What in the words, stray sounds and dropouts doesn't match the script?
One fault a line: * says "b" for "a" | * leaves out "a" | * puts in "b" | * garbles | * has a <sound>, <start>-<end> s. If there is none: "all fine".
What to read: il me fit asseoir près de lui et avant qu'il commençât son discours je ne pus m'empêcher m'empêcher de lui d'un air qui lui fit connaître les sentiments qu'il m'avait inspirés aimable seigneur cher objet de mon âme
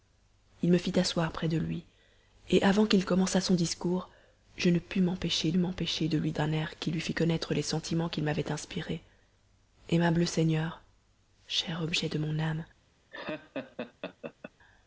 * has a laugh, 13.1-14.5 s